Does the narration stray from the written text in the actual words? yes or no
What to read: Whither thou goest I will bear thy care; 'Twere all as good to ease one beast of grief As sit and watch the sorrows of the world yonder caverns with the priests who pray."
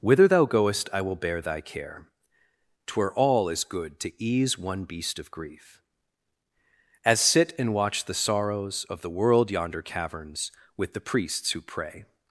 no